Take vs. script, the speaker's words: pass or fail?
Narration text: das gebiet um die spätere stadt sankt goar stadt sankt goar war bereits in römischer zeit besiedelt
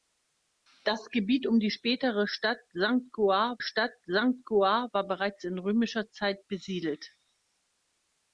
pass